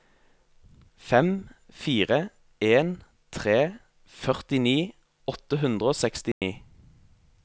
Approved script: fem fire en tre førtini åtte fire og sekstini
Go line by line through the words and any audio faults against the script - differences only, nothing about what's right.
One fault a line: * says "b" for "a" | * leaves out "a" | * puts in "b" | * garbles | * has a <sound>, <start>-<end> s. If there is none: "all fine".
* says "hundre" for "fire"
* has a dropout, 6.3-6.4 s